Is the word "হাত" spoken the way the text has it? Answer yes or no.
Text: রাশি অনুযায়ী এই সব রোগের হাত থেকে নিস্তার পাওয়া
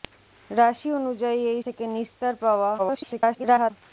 no